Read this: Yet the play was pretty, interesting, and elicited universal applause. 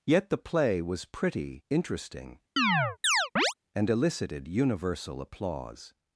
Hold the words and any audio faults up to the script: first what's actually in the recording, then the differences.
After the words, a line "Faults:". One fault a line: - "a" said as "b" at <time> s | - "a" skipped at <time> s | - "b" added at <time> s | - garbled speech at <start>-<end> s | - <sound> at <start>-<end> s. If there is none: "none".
Yet the play was pretty, interesting, and elicited universal applause.
Faults:
- chirp at 2.6-3.5 s